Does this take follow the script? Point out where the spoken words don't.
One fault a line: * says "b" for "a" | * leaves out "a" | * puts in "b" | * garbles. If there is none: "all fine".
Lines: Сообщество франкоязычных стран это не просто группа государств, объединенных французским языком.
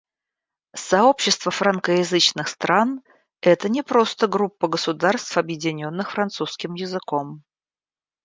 all fine